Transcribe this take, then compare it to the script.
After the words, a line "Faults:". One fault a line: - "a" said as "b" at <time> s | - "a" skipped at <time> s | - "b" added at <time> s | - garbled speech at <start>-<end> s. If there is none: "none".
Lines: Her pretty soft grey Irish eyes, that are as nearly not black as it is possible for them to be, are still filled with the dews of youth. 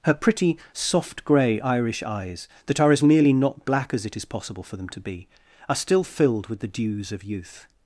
Her pretty soft grey Irish eyes, that are as nearly not black as it is possible for them to be, are still filled with the dews of youth.
Faults:
none